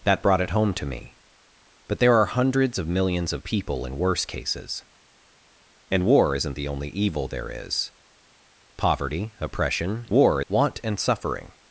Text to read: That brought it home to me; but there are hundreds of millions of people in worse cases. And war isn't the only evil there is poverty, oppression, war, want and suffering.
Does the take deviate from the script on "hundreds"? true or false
false